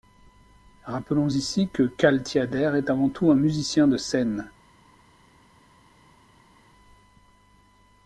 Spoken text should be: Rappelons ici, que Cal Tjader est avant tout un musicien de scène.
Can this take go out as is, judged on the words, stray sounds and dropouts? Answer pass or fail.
pass